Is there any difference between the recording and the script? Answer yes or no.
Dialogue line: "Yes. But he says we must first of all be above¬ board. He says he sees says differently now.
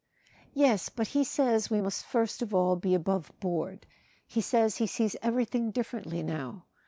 yes